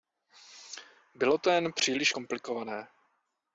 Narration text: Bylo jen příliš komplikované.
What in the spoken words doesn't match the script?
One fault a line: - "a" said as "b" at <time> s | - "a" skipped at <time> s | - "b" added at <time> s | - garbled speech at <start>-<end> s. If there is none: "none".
- "to" added at 1.4 s